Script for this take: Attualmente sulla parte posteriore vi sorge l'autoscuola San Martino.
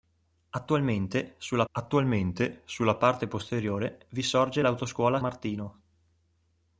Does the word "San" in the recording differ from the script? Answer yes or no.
yes